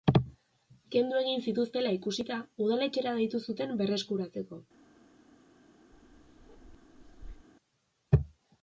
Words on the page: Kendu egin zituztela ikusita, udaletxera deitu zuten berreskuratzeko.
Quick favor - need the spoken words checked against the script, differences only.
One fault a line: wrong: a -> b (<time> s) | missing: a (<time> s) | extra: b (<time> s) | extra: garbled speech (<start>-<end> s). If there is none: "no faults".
no faults